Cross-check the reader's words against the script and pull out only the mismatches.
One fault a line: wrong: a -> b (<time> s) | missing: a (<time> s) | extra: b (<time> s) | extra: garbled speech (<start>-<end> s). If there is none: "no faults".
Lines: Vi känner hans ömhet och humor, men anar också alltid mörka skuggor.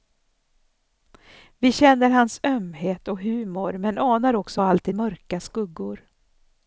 no faults